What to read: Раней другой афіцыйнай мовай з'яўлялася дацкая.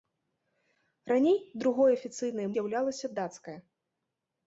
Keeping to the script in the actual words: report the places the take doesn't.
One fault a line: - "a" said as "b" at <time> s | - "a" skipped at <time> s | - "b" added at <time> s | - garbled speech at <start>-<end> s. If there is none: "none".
- "мовай" skipped at 2.5 s